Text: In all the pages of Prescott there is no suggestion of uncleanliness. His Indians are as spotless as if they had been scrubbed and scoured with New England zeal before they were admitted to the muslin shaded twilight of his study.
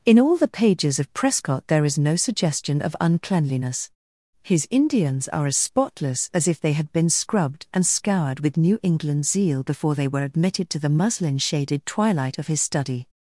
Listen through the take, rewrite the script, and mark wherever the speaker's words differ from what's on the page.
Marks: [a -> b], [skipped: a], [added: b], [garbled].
In all the pages of Prescott there is no suggestion of uncleanliness. His Indians are as spotless as if they had been scrubbed and scoured with New England zeal before they were admitted to the muslin shaded twilight of his study.